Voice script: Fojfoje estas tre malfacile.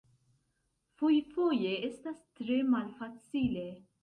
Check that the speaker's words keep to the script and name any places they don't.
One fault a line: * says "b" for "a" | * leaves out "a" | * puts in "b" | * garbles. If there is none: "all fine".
all fine